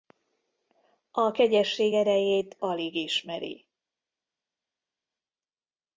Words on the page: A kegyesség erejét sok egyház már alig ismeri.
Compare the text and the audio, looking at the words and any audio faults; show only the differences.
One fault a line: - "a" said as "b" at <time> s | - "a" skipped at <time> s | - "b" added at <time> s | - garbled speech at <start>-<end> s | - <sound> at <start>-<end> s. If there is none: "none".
- "sok egyház már" skipped at 2.6 s